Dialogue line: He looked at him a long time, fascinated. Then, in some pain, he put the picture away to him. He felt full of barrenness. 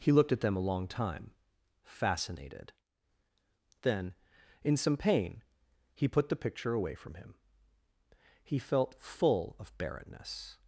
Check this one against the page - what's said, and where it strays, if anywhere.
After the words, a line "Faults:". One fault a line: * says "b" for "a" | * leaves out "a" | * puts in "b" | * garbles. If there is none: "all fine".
He looked at them a long time, fascinated. Then, in some pain, he put the picture away from him. He felt full of barrenness.
Faults:
* says "them" for "him"
* says "from" for "to"